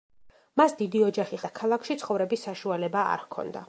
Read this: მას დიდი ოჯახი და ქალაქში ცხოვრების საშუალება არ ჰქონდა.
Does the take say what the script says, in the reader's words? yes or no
yes